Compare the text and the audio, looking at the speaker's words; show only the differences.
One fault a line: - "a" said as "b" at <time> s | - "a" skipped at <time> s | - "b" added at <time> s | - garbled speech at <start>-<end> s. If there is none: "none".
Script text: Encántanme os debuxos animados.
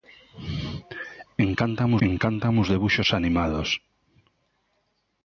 - "encántanme" added at 2.1 s